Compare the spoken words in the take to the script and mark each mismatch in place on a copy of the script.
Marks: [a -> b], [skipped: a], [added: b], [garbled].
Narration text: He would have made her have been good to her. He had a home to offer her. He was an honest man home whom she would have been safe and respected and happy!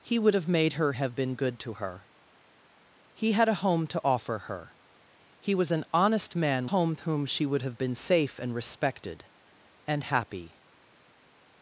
He would have made her have been good to her. He had a home to offer her. He was an honest man home whom she would have been safe and respected and happy!